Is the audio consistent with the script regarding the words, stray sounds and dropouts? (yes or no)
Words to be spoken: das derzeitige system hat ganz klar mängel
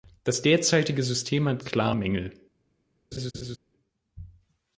no